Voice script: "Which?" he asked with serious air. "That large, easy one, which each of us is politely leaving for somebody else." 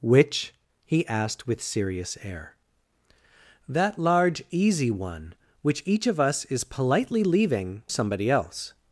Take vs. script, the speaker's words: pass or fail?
fail